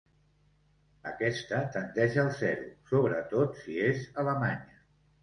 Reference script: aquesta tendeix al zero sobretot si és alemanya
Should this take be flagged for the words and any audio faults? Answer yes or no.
no